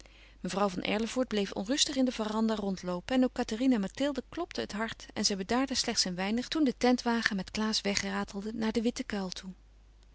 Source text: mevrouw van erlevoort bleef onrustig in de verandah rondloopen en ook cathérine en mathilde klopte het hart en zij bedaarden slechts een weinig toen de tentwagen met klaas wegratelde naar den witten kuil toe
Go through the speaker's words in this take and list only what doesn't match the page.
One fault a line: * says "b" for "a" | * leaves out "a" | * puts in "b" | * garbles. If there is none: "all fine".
all fine